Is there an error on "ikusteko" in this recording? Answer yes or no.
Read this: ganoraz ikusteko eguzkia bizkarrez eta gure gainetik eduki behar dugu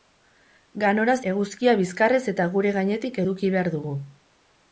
yes